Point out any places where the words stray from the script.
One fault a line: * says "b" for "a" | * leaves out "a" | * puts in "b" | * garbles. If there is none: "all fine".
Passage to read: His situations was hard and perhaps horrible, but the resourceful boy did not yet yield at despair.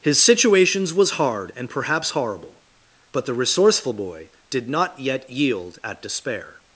all fine